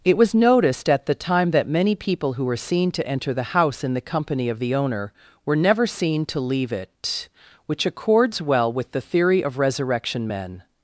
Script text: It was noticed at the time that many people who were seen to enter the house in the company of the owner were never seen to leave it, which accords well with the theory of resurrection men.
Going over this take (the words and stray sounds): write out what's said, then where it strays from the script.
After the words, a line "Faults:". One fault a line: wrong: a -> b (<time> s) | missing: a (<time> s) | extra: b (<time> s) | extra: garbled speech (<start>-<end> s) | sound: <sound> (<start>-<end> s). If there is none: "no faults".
It was noticed at the time that many people who were seen to enter the house in the company of the owner were never seen to leave it, which accords well with the theory of resurrection men.
Faults:
no faults